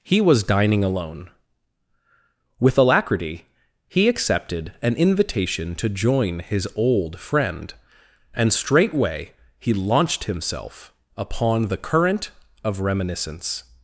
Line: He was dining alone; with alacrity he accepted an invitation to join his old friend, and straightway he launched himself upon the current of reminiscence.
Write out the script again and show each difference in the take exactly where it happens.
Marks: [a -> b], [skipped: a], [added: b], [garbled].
He was dining alone; with alacrity he accepted an invitation to join his old friend, and straightway he launched himself upon the current of reminiscence.